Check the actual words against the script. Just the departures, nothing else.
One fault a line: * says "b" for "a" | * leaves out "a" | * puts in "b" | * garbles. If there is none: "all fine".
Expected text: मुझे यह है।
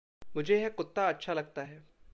* puts in "कुत्ता अच्छा लगता"